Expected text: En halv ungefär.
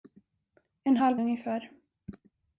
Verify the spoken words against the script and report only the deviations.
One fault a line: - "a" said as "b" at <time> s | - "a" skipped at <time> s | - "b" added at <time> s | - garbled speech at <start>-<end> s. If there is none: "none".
none